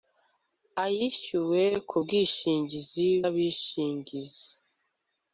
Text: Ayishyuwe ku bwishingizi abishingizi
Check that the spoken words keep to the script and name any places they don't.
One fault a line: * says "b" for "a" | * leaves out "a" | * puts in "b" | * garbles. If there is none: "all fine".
all fine